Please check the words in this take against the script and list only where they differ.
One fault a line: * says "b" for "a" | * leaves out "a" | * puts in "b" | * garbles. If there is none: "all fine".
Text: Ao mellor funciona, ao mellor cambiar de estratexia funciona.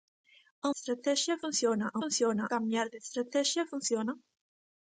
* says "estratexia" for "mellor"
* says "funciona" for "mellor"